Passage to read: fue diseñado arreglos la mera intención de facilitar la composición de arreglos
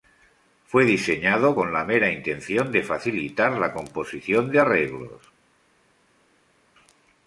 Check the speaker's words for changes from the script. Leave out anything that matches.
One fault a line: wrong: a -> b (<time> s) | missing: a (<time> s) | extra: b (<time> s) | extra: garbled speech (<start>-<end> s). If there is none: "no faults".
wrong: arreglos -> con (1.5 s)